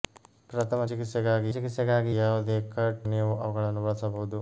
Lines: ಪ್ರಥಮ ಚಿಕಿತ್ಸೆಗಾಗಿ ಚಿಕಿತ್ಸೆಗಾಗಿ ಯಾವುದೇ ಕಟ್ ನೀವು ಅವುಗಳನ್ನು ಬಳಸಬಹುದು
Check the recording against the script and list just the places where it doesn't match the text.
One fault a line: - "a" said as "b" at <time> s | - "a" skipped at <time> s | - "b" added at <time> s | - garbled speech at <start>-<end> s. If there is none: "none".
none